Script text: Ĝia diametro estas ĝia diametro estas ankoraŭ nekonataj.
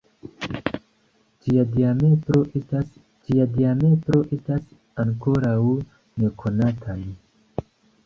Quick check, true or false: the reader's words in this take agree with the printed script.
true